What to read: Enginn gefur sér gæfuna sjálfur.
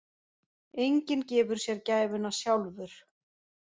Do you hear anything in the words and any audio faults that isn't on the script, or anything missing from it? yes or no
no